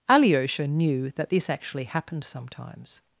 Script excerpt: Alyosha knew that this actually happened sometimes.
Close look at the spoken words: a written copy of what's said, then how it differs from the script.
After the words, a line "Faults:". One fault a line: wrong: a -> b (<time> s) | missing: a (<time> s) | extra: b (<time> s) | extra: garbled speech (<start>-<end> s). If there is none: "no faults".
Alyosha knew that this actually happened sometimes.
Faults:
no faults